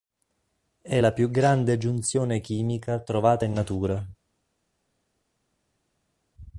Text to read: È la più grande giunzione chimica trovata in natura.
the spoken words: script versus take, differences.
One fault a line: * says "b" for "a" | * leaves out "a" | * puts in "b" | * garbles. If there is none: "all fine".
all fine